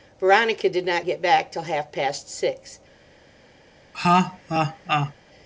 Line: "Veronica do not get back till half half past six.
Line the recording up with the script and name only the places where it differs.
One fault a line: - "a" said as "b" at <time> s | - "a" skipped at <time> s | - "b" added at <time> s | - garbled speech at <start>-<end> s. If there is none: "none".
- "do" said as "did" at 0.7 s
- "half" skipped at 1.9 s